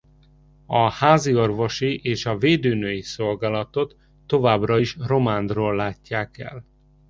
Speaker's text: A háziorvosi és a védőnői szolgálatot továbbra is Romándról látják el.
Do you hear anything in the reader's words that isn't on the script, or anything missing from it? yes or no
no